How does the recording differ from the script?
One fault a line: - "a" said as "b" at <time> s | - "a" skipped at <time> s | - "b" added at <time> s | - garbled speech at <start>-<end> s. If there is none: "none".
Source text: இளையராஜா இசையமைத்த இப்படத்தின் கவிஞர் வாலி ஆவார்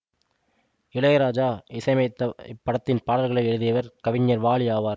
- "பாடல்களை எழுதியவர்" added at 3.0 s